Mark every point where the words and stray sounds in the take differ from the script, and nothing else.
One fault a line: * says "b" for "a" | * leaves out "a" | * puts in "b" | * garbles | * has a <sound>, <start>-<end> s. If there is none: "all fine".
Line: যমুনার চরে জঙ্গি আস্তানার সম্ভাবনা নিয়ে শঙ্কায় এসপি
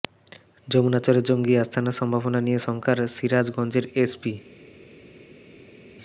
* puts in "সিরাজগঞ্জের"